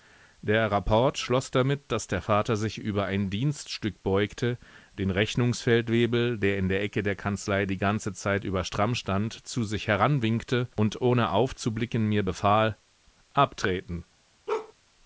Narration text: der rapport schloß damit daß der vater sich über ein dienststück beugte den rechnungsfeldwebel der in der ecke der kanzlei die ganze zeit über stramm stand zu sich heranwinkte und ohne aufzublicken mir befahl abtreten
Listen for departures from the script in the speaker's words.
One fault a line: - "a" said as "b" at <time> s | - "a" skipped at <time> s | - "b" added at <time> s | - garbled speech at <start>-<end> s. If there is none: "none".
none